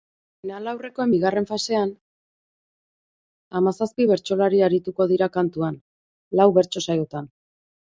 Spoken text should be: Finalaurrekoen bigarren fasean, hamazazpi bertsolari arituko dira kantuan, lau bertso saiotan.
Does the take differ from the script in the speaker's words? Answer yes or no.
no